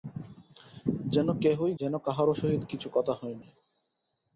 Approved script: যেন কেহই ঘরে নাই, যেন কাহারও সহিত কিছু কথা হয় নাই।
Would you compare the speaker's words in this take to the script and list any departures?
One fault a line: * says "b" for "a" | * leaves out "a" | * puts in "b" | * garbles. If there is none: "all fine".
* leaves out "ঘরে নাই"